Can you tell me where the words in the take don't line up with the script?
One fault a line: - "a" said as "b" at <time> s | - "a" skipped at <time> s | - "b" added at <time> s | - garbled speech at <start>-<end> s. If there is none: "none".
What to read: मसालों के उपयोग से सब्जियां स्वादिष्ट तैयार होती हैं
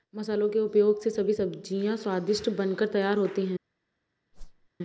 - "सभी" added at 1.1 s
- "बनकर" added at 2.5 s